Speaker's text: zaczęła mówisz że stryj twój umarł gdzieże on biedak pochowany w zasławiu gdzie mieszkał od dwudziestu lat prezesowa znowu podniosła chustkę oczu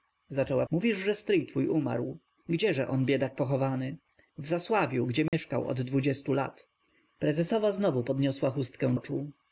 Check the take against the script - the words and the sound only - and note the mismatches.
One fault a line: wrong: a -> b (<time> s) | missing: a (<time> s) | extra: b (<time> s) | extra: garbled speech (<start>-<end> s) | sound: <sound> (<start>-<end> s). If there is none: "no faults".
sound: dropout (5.3-5.3 s)